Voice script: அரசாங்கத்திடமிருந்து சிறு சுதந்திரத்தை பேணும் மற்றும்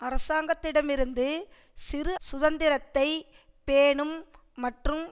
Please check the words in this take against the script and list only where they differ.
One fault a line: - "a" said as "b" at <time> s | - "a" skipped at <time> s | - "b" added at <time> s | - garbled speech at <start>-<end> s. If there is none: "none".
none